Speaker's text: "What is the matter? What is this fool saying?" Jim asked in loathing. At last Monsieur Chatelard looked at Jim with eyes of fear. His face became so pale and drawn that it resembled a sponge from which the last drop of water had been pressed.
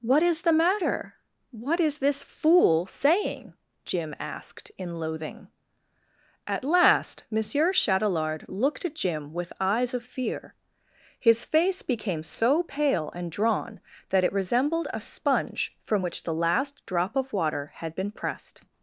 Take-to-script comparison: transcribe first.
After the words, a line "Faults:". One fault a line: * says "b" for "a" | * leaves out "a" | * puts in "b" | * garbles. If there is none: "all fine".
"What is the matter? What is this fool saying?" Jim asked in loathing. At last Monsieur Chatelard looked at Jim with eyes of fear. His face became so pale and drawn that it resembled a sponge from which the last drop of water had been pressed.
Faults:
all fine